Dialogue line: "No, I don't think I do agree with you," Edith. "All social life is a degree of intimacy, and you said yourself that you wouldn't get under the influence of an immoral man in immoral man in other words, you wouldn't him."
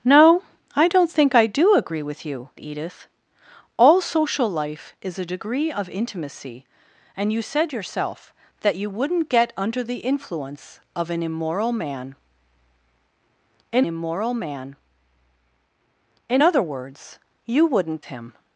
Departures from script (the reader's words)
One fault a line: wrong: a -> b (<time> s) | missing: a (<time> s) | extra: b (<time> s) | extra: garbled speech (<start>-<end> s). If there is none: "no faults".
no faults